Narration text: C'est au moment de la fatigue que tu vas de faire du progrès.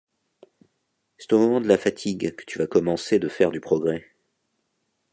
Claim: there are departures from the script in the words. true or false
true